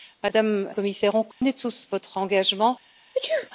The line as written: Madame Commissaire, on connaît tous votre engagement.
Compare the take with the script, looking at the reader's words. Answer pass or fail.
pass